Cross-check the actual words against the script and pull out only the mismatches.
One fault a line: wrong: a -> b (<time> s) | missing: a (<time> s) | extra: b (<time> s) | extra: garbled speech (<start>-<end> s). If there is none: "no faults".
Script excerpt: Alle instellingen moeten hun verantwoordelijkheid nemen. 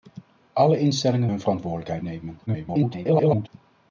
missing: moeten (1.3 s)
extra: garbled speech (2.5-3.5 s)